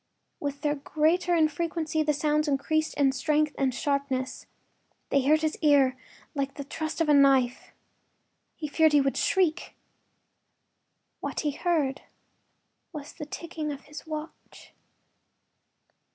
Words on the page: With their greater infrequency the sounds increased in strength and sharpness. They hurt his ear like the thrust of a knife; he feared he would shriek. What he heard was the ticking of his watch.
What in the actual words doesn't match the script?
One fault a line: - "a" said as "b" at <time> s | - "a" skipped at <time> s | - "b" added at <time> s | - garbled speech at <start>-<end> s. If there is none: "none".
none